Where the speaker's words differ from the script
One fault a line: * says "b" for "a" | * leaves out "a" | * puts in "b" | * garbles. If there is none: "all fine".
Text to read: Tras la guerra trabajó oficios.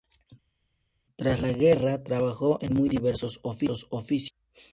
* puts in "en muy diversos"